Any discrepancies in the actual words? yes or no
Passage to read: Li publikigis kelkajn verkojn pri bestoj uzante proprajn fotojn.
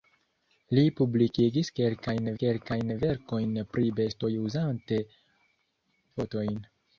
yes